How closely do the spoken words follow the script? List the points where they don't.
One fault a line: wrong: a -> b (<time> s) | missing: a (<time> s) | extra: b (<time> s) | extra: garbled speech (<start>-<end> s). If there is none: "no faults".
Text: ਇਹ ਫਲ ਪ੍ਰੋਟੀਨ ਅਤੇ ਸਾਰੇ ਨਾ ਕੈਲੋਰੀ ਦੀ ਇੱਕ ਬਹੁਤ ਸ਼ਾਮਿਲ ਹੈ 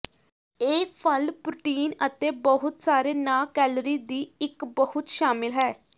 extra: ਬਹੁਤ (2.4 s)